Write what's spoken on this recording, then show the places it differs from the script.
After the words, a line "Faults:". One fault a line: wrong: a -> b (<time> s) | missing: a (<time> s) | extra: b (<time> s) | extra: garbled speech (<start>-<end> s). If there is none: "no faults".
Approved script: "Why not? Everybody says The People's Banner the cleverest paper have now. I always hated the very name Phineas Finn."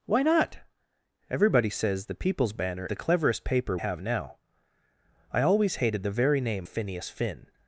"Why not? Everybody says The People's Banner the cleverest paper have now. I always hated the very name Phineas Finn."
Faults:
no faults